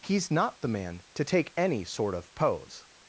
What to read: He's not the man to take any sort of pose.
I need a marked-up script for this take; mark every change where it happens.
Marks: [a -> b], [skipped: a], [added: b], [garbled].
He's not the man to take any sort of pose.